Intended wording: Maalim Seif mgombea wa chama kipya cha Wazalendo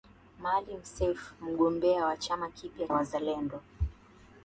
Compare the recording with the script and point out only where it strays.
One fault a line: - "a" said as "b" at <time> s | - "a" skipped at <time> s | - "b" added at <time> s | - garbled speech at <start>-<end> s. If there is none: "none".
- "cha" skipped at 2.9 s